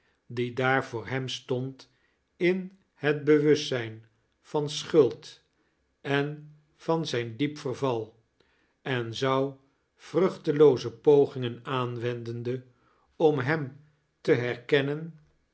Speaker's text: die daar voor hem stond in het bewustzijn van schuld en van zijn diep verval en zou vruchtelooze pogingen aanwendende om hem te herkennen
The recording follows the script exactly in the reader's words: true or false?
true